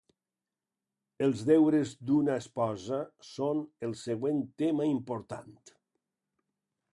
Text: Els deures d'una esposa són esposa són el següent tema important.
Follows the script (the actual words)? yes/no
no